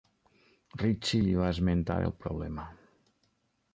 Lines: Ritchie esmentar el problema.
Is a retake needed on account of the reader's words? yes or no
yes